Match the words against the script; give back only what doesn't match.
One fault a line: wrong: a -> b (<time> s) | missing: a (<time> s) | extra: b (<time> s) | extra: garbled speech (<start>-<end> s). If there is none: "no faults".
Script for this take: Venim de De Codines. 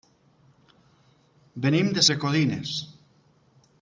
no faults